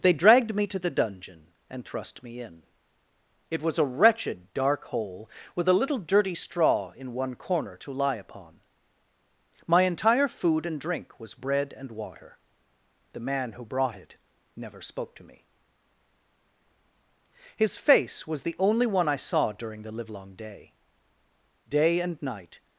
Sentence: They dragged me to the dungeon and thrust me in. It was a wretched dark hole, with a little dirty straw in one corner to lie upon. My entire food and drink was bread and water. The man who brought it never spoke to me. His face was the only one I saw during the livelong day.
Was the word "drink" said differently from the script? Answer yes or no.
no